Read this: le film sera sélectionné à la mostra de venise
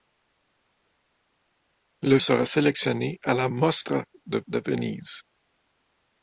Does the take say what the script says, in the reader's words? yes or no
no